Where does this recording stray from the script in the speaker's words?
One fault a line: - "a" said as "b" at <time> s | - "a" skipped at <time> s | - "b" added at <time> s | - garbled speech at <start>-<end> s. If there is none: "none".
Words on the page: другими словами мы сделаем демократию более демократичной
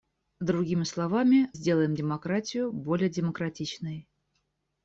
- "мы" skipped at 1.5 s